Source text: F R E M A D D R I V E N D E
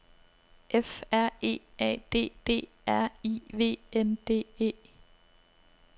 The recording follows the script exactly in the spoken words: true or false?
false